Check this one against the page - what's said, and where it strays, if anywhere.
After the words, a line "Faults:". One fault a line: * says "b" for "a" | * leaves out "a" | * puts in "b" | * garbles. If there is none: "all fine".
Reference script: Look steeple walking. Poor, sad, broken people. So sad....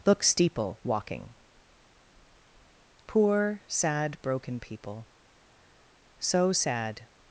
Look steeple walking. Poor, sad, broken people. So sad....
Faults:
all fine